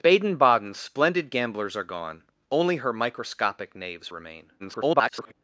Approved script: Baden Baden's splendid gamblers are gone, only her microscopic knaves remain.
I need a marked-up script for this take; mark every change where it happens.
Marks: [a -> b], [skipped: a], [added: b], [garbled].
Baden Baden's splendid gamblers are gone, only her microscopic knaves remain. [garbled]